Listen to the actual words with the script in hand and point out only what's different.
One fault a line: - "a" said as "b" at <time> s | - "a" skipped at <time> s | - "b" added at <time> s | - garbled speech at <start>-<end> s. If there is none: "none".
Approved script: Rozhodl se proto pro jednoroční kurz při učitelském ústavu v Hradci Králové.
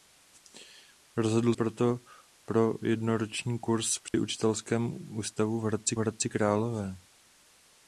- "se" skipped at 1.5 s
- "Hradci" added at 6.0 s